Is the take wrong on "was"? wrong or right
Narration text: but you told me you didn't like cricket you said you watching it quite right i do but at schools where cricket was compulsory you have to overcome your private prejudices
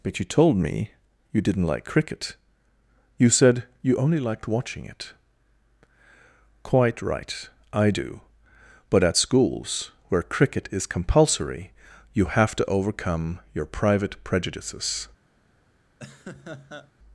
wrong